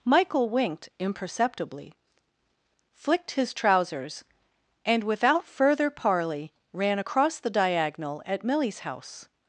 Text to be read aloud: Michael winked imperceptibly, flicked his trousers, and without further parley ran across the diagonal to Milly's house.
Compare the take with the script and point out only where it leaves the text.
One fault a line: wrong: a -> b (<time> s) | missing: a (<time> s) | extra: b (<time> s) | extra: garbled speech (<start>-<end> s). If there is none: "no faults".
wrong: to -> at (8.3 s)